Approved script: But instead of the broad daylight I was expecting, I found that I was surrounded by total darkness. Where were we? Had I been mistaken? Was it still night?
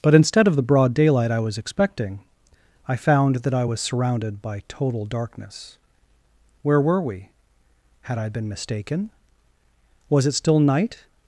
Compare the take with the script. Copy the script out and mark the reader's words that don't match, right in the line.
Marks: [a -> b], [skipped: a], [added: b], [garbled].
But instead of the broad daylight I was expecting, I found that I was surrounded by total darkness. Where were we? Had I been mistaken? Was it still night?